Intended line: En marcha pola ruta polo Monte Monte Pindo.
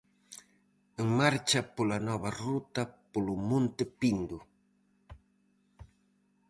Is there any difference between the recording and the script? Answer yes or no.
yes